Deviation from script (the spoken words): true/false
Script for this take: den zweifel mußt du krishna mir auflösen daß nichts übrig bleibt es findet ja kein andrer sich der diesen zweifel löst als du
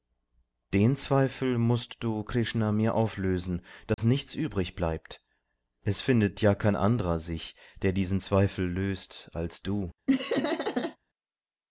false